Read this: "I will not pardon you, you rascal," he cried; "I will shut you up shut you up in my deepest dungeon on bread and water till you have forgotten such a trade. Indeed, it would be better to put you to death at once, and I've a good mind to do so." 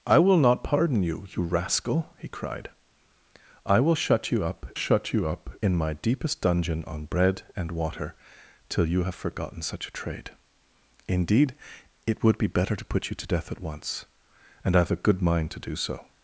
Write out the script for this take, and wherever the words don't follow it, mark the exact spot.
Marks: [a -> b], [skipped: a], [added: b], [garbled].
"I will not pardon you, you rascal," he cried; "I will shut you up shut you up in my deepest dungeon on bread and water till you have forgotten such a trade. Indeed, it would be better to put you to death at once, and I've a good mind to do so."